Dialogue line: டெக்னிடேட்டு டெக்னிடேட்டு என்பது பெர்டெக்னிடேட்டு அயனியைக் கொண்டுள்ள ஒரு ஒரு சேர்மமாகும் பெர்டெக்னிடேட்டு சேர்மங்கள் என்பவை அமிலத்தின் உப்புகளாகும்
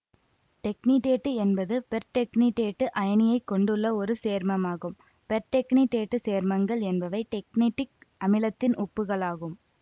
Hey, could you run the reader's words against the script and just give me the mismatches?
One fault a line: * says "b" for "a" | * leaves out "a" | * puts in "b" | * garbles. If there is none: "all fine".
* leaves out "டெக்னிடேட்டு"
* leaves out "ஒரு"
* puts in "டெக்னடிக்"